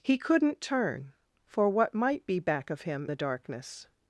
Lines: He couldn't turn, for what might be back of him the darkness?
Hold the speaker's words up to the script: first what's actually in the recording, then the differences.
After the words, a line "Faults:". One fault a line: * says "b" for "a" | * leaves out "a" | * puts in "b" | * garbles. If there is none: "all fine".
He couldn't turn, for what might be back of him the darkness?
Faults:
all fine